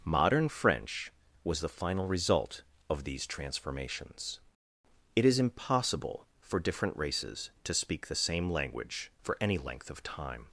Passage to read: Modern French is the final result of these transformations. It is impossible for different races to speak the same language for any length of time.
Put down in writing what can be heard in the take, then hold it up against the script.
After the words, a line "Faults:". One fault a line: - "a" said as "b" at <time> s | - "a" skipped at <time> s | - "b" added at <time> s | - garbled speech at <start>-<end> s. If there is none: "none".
Modern French was the final result of these transformations. It is impossible for different races to speak the same language for any length of time.
Faults:
- "is" said as "was" at 1.4 s